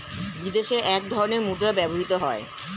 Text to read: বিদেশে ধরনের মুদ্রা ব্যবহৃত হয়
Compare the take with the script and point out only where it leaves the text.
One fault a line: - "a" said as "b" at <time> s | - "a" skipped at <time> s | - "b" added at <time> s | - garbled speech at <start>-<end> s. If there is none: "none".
- "এক" added at 0.9 s